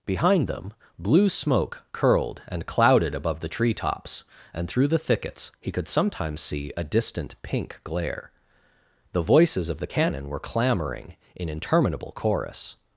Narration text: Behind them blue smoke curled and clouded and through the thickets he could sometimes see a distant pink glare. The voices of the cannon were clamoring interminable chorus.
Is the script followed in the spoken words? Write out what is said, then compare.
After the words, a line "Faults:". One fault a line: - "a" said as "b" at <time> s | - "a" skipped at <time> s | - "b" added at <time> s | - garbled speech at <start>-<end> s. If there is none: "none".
Behind them blue smoke curled and clouded above the treetops, and through the thickets he could sometimes see a distant pink glare. The voices of the cannon were clamoring in interminable chorus.
Faults:
- "above the treetops" added at 3.1 s
- "in" added at 11.4 s